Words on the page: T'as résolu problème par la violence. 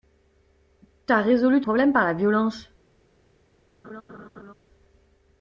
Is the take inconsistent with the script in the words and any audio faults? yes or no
yes